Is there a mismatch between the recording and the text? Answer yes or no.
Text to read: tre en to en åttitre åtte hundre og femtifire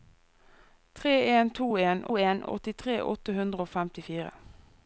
yes